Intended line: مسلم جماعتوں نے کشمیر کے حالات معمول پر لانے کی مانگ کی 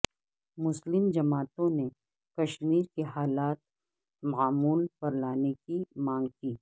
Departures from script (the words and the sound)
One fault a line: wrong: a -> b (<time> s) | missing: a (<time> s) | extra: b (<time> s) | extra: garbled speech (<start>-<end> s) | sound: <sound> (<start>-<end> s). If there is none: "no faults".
no faults